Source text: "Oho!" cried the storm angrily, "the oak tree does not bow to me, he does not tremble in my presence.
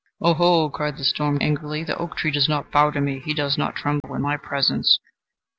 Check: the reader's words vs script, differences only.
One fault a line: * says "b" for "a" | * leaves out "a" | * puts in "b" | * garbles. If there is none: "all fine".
all fine